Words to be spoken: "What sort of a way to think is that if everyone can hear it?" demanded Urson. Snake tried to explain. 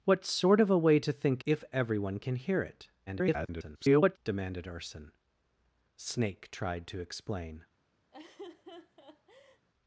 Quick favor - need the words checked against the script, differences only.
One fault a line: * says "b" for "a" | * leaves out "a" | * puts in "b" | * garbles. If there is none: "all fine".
* leaves out "is that"
* garbles